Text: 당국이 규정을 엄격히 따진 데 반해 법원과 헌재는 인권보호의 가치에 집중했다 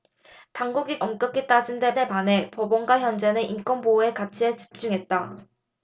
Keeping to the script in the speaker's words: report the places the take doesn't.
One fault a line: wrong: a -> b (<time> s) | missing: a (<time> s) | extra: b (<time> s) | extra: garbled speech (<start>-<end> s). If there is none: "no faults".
missing: 규정을 (1.0 s)
extra: 데 (1.9 s)